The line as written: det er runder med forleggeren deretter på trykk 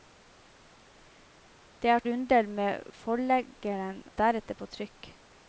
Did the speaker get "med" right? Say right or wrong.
right